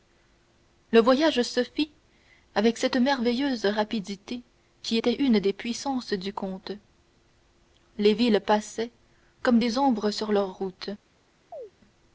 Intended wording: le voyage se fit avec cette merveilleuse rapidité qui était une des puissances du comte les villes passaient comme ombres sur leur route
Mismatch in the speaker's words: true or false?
true